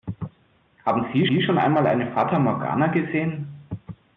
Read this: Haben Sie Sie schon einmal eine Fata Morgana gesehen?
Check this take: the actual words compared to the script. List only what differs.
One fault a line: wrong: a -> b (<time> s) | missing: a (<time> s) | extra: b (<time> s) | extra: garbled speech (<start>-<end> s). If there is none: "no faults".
no faults